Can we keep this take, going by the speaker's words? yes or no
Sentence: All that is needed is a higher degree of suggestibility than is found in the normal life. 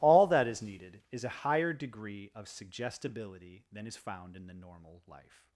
yes